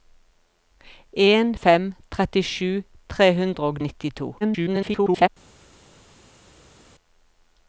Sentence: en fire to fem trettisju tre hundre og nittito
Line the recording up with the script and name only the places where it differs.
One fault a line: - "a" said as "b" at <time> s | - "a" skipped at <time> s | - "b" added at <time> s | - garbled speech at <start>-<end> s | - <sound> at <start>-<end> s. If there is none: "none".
- "fire to" skipped at 1.5 s
- garbled speech at 4.4-5.3 s